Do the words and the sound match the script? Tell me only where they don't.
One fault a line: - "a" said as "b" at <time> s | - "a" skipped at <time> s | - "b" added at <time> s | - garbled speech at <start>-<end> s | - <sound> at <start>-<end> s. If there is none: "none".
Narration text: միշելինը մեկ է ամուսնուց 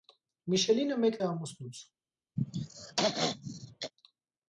- throat clearing at 2.4-3.9 s